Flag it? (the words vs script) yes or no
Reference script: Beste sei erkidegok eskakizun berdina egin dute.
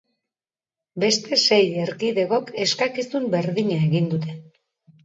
no